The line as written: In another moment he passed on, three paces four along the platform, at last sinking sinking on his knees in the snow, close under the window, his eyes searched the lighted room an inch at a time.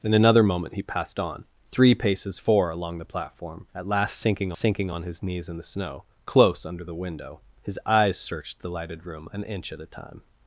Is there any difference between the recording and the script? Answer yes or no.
no